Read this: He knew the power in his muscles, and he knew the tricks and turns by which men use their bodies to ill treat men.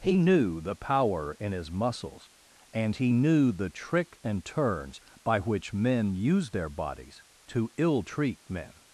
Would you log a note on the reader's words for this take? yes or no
yes